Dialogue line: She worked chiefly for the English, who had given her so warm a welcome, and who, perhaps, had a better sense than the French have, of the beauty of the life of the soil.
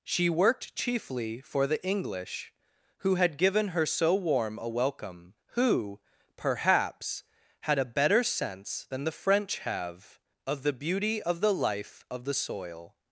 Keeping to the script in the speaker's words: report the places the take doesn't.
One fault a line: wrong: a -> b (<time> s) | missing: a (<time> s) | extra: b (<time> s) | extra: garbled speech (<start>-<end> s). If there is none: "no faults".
missing: and (5.3 s)